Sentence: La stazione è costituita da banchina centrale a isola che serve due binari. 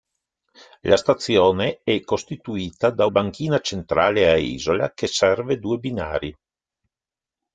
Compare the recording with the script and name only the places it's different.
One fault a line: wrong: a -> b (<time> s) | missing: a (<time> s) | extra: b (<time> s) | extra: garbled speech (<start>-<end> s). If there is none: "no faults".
no faults